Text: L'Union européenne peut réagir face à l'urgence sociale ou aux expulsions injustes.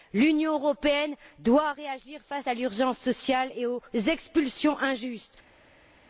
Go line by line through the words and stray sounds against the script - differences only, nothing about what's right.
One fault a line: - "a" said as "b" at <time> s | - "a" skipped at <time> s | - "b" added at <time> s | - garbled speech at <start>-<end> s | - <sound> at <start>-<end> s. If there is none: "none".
- "peut" said as "doit" at 1.4 s
- "ou" said as "et" at 3.5 s